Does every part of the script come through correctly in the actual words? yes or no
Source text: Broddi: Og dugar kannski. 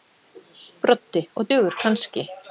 yes